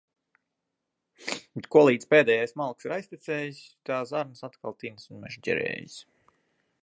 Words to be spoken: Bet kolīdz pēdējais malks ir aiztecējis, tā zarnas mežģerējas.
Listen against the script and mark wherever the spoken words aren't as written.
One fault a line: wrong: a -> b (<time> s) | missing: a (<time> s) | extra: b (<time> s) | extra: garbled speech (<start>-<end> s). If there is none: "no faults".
extra: atkal tinas un (4.5 s)